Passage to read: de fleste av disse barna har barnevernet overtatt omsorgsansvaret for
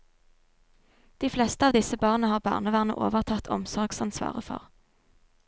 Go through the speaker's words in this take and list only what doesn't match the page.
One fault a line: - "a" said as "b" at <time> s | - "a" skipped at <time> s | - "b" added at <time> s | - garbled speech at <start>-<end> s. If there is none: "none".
none